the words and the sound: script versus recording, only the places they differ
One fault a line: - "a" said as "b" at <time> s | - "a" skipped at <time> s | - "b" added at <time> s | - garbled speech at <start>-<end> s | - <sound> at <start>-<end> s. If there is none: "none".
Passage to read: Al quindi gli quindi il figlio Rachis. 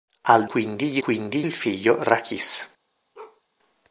- bark at 3.1-3.4 s